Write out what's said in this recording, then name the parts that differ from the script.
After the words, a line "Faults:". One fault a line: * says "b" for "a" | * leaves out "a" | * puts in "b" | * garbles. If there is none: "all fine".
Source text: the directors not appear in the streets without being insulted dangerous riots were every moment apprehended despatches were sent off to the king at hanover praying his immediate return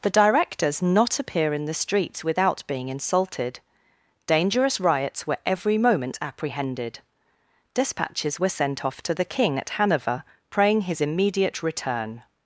the directors not appear in the streets without being insulted dangerous riots were every moment apprehended despatches were sent off to the king at hanover praying his immediate return
Faults:
all fine